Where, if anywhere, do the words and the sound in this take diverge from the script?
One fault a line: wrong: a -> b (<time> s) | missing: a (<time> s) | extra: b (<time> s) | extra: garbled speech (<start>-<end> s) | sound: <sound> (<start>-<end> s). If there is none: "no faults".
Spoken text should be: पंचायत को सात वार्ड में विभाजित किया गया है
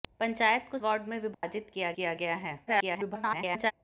missing: सात (0.8 s)
sound: dropout (1.3-1.4 s)
extra: किया (1.9 s)
extra: garbled speech (2.7-3.7 s)